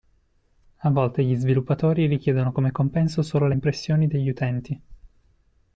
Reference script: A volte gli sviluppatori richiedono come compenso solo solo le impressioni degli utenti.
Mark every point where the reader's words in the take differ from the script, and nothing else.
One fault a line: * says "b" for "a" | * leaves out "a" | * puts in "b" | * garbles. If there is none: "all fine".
* leaves out "solo"